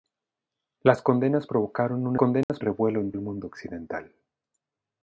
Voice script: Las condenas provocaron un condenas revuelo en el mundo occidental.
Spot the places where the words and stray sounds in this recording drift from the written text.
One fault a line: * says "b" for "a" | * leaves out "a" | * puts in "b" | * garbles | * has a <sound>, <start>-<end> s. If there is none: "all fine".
* has a dropout, 2.4-2.5 s